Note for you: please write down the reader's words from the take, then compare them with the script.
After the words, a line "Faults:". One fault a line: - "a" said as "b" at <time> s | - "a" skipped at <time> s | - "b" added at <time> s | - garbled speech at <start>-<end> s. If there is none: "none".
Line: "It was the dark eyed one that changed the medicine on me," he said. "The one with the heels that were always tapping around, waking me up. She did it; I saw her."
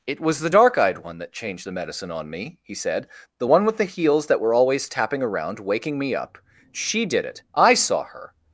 "It was the dark eyed one that changed the medicine on me," he said. "The one with the heels that were always tapping around, waking me up. She did it; I saw her."
Faults:
none